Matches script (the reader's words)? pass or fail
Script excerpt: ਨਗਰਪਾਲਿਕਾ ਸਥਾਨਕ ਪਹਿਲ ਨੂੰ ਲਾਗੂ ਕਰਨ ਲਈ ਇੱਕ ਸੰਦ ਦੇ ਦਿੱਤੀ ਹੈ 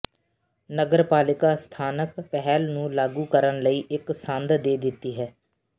pass